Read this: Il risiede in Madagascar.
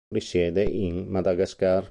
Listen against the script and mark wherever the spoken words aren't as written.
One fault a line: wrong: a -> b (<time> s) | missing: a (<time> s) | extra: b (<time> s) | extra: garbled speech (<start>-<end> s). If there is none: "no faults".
no faults